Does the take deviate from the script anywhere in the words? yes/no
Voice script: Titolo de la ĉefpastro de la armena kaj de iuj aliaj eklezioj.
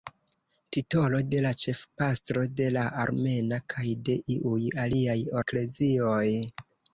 no